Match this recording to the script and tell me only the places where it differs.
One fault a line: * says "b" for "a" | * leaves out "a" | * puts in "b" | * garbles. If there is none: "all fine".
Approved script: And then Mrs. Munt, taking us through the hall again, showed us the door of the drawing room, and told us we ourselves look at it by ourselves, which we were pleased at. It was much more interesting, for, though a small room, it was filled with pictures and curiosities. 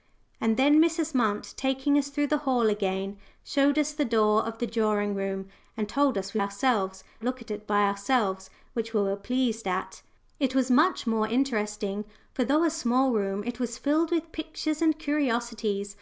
all fine